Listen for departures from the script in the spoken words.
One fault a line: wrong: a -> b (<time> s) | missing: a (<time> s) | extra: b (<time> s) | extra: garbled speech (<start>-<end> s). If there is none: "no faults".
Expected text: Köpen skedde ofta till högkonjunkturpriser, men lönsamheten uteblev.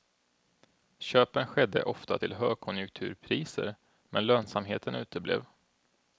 no faults